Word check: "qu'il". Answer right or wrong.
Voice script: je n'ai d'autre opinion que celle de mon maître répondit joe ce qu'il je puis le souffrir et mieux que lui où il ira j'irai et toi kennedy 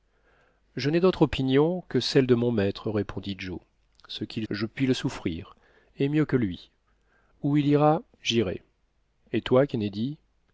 right